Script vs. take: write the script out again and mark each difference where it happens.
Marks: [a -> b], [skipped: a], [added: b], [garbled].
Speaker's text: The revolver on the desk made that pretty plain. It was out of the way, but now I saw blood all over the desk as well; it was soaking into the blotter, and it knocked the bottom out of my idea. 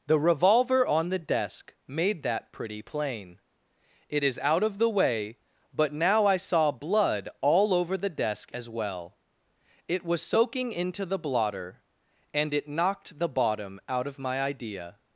The revolver on the desk made that pretty plain. It [was -> is] out of the way, but now I saw blood all over the desk as well; it was soaking into the blotter, and it knocked the bottom out of my idea.